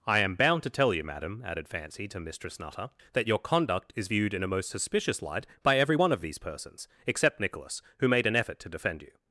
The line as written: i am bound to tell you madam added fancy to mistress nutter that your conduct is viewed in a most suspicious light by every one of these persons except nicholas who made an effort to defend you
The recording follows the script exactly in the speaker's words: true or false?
true